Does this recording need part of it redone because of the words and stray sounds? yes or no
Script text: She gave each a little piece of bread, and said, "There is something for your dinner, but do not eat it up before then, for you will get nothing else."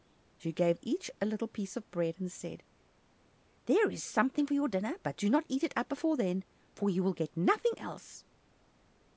no